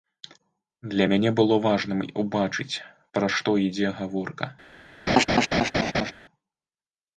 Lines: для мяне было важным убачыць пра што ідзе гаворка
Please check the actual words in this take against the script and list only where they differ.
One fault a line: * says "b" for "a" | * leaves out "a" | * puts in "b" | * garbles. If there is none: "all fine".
all fine